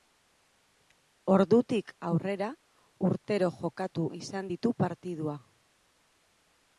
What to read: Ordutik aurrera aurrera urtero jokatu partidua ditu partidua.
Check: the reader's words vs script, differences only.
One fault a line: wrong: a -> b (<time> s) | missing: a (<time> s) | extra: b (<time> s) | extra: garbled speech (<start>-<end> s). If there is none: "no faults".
missing: aurrera (2.5 s)
wrong: partidua -> izan (4.2 s)